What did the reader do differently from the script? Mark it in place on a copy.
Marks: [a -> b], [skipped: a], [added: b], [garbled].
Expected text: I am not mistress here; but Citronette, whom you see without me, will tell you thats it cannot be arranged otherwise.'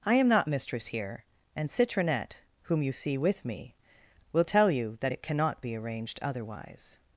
I am not mistress here; [but -> and] Citronette, whom you see [without -> with] me, will tell you [thats -> that] it cannot be arranged otherwise.'